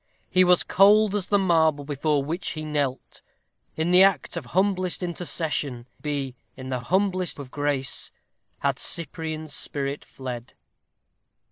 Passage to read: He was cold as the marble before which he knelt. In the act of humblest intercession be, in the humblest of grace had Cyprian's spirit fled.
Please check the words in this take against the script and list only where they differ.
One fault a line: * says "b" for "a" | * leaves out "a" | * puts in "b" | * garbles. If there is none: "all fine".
all fine